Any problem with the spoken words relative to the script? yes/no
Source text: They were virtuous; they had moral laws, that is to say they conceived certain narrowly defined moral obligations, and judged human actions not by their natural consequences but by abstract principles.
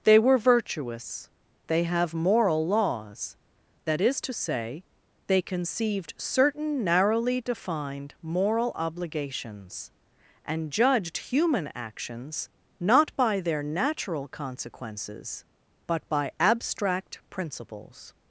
yes